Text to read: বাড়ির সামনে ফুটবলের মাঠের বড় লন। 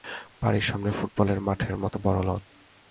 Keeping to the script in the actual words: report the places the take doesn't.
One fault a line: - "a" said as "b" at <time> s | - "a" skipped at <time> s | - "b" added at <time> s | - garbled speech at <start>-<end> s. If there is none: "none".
- "মতো" added at 1.8 s